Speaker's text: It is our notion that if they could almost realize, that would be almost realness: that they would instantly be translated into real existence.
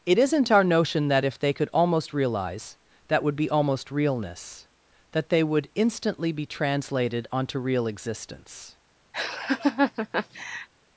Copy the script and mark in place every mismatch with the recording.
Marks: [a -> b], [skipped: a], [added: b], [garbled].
It [is -> isn't] our notion that if they could almost realize, that would be almost realness: that they would instantly be translated [into -> onto] real existence.